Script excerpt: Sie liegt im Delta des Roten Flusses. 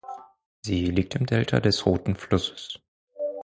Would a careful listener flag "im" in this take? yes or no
no